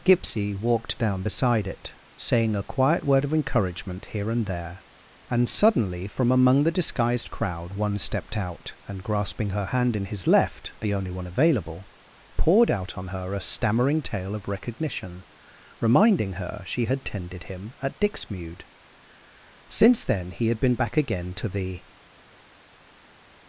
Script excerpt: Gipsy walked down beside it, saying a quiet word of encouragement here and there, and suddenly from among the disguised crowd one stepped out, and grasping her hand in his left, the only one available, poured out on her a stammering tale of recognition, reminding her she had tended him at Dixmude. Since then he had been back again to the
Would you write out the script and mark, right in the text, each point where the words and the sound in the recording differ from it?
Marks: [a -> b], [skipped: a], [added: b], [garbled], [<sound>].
Gipsy walked down beside it, saying a quiet word of encouragement here and there, and suddenly from among the disguised crowd one stepped out, and grasping her hand in his left, the only one available, poured out on her a stammering tale of recognition, reminding her she had tended him at Dixmude. Since then he had been back again to the